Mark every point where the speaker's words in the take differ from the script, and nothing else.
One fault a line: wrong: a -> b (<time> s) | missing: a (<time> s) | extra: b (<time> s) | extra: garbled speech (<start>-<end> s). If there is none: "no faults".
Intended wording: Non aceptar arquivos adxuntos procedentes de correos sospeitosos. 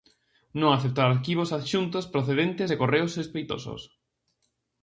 no faults